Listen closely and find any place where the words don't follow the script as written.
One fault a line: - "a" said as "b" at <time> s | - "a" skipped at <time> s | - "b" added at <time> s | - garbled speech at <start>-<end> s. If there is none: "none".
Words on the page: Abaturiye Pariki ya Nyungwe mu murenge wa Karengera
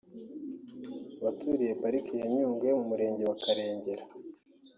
none